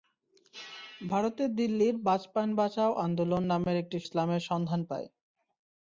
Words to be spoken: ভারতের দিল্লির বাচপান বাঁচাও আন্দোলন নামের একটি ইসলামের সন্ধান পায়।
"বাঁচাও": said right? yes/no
yes